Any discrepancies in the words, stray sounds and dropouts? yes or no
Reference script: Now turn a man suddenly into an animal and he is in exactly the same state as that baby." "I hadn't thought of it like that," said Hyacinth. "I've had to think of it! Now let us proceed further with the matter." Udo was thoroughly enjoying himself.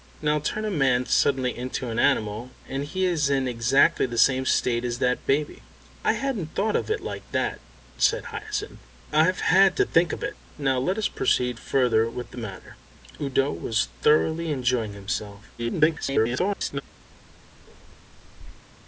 yes